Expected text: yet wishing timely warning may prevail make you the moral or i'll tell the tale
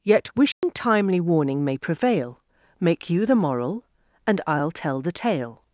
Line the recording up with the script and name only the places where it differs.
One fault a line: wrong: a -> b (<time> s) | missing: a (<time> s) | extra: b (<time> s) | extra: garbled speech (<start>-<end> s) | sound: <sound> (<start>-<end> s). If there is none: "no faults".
sound: dropout (0.5-0.6 s)
wrong: or -> and (4.3 s)